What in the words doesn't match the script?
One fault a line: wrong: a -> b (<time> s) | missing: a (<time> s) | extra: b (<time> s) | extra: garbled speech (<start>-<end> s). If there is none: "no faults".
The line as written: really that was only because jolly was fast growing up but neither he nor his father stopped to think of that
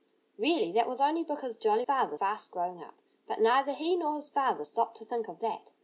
wrong: was -> father (1.8 s)